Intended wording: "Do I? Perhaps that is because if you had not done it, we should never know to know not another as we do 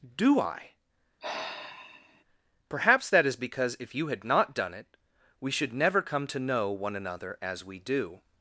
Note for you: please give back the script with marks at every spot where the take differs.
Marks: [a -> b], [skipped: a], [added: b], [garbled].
"Do I? Perhaps that is because if you had not done it, we should never [know -> come] to know [not -> one] another as we do